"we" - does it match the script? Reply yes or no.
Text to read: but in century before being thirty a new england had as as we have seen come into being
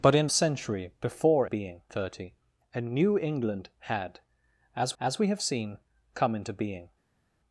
yes